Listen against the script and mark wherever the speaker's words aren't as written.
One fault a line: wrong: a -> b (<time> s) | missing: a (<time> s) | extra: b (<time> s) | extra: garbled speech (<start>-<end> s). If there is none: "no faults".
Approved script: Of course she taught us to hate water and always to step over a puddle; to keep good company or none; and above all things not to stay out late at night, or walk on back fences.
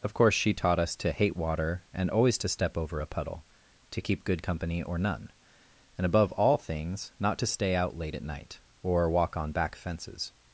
no faults